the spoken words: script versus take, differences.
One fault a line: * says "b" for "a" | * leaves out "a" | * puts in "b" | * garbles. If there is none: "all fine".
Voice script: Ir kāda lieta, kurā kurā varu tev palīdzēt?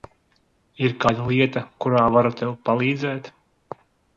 * leaves out "kurā"